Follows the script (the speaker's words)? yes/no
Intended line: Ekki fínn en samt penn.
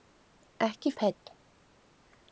no